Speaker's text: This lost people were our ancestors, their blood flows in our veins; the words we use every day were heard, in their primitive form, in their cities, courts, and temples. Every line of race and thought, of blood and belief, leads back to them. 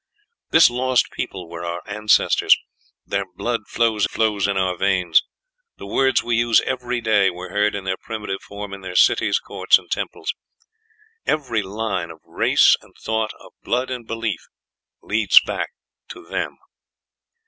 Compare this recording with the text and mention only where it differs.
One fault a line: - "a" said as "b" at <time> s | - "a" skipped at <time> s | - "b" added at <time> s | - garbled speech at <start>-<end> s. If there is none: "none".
- "flows" added at 4.1 s